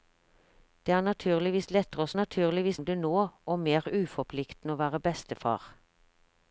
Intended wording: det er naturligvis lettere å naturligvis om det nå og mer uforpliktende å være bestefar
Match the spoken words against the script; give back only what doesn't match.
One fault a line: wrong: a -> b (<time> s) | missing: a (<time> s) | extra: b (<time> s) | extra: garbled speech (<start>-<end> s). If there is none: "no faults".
no faults